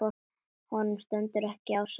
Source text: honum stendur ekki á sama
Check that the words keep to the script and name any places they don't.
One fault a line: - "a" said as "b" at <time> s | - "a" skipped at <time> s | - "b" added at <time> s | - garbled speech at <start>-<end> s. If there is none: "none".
none